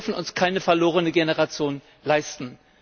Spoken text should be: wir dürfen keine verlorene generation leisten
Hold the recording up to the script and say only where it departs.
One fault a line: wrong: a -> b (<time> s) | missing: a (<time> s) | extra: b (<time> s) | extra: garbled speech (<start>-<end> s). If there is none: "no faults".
extra: uns (0.2 s)